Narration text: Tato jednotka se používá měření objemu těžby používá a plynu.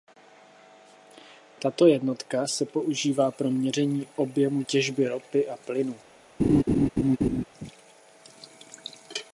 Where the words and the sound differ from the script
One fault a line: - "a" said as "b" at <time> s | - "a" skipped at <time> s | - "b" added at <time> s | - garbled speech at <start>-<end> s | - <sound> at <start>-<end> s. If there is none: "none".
- "pro" added at 3.3 s
- "používá" said as "ropy" at 5.1 s
- laugh at 6.4-7.4 s